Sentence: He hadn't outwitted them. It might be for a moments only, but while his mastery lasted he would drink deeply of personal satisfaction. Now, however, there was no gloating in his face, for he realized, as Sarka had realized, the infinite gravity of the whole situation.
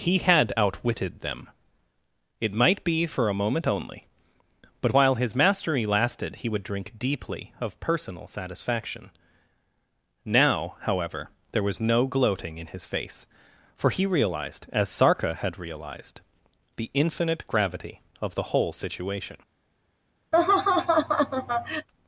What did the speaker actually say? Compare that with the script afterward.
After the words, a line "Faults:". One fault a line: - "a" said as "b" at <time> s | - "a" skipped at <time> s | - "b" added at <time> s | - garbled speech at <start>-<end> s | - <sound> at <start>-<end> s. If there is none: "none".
He had outwitted them. It might be for a moment only, but while his mastery lasted he would drink deeply of personal satisfaction. Now, however, there was no gloating in his face, for he realized, as Sarka had realized, the infinite gravity of the whole situation.
Faults:
- "hadn't" said as "had" at 0.2 s
- "moments" said as "moment" at 3.4 s
- laugh at 20.3-21.9 s